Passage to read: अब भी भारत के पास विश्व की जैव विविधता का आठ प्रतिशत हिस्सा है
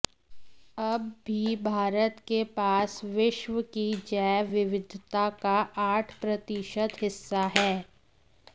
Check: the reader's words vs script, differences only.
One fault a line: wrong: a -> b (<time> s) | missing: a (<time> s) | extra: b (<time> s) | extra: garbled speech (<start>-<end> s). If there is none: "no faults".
no faults